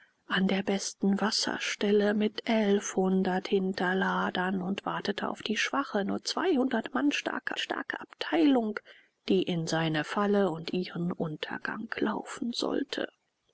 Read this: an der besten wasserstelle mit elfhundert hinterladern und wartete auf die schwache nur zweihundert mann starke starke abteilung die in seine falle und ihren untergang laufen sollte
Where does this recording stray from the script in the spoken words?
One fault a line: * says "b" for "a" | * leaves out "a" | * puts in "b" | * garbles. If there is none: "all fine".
all fine